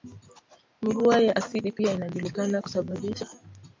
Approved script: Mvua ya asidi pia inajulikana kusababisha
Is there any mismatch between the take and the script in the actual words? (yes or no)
no